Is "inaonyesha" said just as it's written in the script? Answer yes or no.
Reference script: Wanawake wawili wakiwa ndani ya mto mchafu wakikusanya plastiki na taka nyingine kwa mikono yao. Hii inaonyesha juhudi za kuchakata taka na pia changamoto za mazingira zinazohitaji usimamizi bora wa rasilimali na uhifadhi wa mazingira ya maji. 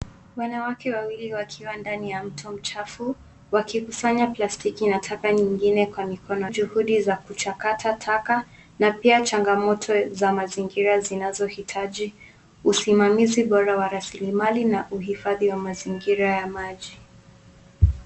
no